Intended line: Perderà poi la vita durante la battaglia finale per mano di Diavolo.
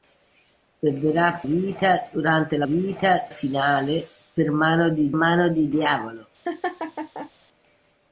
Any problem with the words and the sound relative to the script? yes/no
yes